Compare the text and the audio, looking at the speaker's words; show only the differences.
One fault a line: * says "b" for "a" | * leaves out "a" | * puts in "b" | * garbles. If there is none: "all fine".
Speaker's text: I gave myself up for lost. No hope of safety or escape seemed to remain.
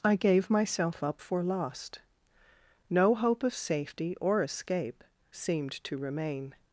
all fine